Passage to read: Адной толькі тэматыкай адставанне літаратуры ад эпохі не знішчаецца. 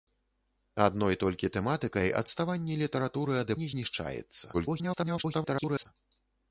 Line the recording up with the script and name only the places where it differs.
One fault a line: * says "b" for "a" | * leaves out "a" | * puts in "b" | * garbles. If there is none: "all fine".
* leaves out "эпохі"
* garbles